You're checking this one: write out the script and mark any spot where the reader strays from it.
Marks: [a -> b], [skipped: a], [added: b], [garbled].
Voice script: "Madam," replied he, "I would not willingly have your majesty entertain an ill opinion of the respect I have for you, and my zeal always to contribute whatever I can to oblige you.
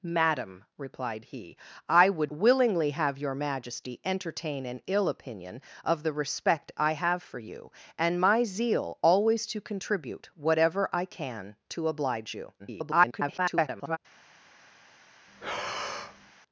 "Madam," replied he, "I would [skipped: not] willingly have your majesty entertain an ill opinion of the respect I have for you, and my zeal always to contribute whatever I can to oblige you. [garbled]